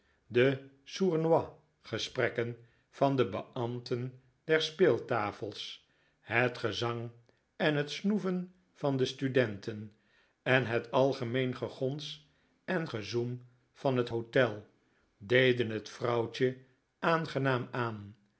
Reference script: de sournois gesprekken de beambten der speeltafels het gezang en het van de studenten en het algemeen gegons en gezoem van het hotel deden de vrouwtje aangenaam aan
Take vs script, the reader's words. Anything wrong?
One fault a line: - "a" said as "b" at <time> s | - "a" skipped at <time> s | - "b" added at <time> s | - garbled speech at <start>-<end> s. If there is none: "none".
- "van" added at 2.9 s
- "snoeven" added at 7.9 s
- "de" said as "het" at 15.7 s